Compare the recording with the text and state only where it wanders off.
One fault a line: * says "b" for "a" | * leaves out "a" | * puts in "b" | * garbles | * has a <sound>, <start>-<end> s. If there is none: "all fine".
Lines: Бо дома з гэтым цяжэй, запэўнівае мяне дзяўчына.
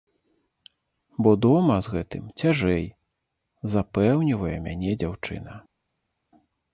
all fine